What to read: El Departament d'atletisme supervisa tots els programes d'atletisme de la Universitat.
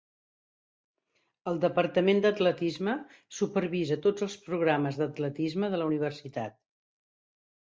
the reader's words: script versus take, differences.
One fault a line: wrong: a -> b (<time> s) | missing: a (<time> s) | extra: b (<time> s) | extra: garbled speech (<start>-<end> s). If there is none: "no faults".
no faults